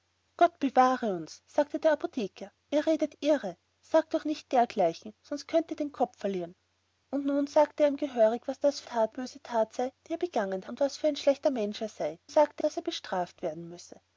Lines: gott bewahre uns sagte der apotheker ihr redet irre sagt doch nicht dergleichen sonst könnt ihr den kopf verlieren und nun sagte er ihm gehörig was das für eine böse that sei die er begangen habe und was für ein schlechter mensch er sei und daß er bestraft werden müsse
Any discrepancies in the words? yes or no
yes